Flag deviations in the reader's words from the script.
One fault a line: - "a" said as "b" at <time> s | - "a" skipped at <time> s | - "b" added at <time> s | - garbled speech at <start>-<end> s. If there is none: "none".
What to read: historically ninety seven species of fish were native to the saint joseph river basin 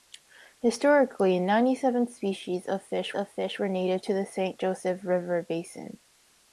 - "of fish" added at 3.1 s